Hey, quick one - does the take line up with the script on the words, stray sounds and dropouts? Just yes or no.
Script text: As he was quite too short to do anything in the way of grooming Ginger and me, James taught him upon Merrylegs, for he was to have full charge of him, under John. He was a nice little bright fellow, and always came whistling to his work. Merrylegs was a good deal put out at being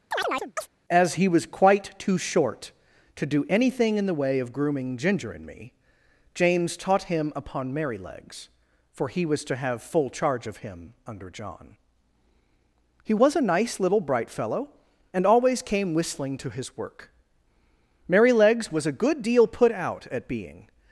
no